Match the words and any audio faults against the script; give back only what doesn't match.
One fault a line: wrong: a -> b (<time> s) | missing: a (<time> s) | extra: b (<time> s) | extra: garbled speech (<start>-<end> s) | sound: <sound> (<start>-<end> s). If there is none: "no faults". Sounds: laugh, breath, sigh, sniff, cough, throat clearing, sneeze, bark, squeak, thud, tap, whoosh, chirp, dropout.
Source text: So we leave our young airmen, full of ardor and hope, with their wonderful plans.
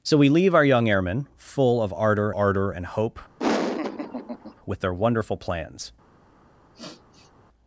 extra: ardor (2.3 s)
sound: laugh (3.4-4.5 s)
sound: sniff (6.7-7.3 s)